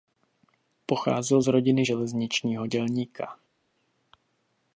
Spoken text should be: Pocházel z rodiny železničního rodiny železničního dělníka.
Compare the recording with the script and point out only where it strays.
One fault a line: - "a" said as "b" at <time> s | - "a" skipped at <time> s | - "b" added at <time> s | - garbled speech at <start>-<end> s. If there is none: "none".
- "rodiny železničního" skipped at 2.7 s